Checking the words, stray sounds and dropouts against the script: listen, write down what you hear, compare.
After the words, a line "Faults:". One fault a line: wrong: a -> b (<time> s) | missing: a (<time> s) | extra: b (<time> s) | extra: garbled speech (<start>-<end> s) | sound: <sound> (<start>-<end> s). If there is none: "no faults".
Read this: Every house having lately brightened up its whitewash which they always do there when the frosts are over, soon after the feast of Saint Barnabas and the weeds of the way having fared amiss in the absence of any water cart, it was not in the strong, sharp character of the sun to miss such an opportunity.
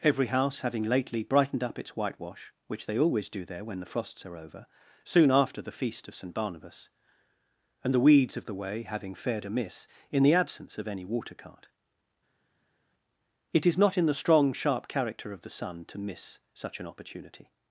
Every house having lately brightened up its whitewash which they always do there when the frosts are over, soon after the feast of Saint Barnabas and the weeds of the way having fared amiss in the absence of any water cart, it is not in the strong, sharp character of the sun to miss such an opportunity.
Faults:
wrong: was -> is (13.7 s)